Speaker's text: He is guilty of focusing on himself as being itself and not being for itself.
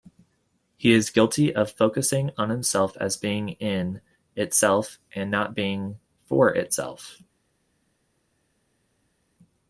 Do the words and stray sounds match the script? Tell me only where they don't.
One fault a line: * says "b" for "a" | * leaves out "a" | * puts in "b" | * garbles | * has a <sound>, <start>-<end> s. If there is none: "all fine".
* puts in "in"